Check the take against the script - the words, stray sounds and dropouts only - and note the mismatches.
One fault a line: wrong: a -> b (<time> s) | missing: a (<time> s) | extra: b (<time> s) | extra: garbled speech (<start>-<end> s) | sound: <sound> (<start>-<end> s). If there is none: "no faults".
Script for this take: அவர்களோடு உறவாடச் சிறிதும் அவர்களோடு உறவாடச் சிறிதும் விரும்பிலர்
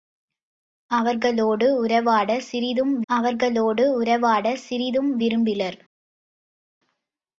no faults